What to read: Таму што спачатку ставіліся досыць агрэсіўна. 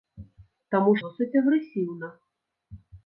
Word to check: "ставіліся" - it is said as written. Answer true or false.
false